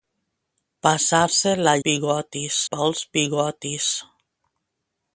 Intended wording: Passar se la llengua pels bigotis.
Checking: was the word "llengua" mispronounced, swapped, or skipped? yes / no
yes